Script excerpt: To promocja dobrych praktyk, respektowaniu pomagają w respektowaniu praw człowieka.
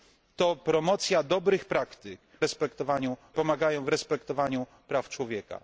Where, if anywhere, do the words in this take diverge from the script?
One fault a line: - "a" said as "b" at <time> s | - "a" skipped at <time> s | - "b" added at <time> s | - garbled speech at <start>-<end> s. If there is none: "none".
none